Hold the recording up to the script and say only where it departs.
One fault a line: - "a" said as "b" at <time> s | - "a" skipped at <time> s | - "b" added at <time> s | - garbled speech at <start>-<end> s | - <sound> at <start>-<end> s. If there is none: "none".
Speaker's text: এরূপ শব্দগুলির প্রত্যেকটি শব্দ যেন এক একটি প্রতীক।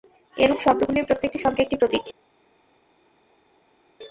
- "যেন এক" skipped at 1.6 s